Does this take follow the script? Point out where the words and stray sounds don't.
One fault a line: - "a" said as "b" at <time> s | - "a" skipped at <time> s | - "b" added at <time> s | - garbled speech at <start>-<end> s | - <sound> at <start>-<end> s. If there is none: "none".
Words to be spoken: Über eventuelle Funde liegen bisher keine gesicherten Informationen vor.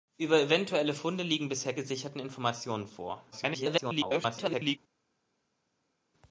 - "keine" skipped at 1.8 s
- garbled speech at 3.3-4.8 s